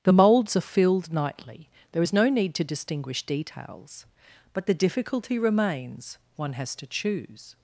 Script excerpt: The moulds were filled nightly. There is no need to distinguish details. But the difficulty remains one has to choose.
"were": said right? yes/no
no